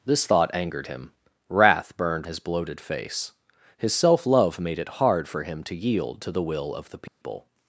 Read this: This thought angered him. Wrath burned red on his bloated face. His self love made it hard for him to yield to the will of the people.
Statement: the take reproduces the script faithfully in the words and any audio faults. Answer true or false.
false